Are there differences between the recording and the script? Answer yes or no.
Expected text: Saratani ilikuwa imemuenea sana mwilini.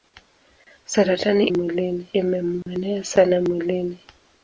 yes